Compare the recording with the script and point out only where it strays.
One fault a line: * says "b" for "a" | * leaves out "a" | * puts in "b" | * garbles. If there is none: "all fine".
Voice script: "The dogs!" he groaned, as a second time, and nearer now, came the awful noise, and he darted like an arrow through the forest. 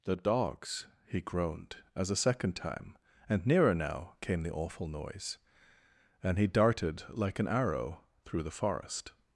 all fine